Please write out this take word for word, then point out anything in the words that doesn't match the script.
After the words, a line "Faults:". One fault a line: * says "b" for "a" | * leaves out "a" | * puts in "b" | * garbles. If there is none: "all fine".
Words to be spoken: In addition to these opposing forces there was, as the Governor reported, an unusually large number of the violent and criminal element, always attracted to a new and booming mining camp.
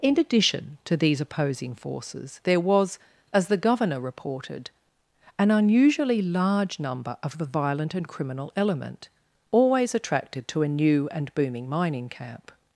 In addition to these opposing forces there was, as the Governor reported, an unusually large number of the violent and criminal element, always attracted to a new and booming mining camp.
Faults:
all fine